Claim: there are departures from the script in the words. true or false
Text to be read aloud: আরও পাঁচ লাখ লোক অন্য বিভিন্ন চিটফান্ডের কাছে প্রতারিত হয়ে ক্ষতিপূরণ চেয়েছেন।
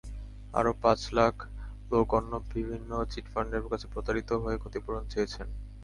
false